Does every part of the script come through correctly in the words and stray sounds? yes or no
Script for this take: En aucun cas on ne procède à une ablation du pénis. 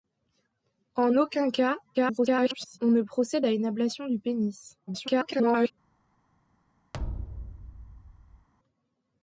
no